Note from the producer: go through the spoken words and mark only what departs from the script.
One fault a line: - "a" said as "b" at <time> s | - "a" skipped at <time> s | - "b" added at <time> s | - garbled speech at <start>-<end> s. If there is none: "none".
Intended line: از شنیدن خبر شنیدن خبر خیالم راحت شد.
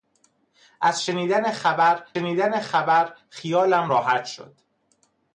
none